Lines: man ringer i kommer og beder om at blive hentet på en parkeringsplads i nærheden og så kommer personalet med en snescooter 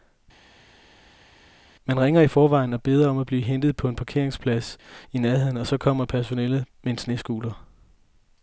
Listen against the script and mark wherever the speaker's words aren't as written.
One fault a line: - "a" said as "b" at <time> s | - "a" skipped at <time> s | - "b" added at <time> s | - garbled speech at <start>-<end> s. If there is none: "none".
- "kommer" said as "forvejen" at 2.3 s